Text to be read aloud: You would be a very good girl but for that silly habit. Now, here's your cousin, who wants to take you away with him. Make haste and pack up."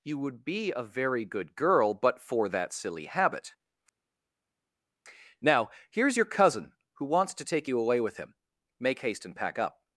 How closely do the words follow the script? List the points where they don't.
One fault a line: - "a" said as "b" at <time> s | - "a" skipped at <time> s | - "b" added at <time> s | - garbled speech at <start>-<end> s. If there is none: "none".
none